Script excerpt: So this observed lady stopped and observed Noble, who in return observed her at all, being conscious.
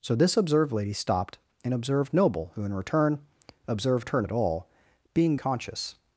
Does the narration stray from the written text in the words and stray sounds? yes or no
no